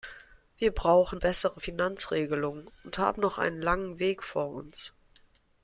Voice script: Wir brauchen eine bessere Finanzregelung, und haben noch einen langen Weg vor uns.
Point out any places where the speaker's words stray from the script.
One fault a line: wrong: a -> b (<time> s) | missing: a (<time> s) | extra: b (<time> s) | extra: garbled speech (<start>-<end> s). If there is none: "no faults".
missing: eine (1.2 s)